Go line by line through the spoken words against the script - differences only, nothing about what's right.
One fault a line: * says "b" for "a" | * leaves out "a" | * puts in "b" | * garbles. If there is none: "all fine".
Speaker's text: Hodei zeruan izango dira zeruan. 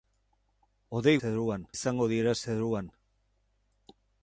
all fine